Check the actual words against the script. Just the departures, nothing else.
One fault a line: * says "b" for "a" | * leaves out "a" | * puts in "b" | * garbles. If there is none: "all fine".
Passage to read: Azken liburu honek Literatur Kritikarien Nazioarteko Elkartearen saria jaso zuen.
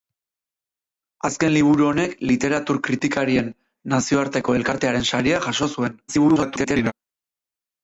* garbles